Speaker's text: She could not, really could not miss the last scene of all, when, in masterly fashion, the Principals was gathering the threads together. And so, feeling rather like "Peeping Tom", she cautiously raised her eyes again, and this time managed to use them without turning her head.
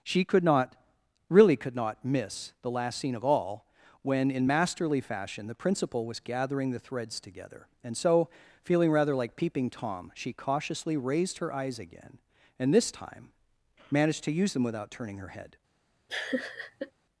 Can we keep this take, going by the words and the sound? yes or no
no